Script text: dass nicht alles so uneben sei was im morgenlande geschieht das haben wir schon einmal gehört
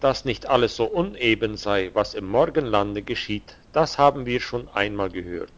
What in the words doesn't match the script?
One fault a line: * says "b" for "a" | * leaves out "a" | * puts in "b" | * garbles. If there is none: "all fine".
all fine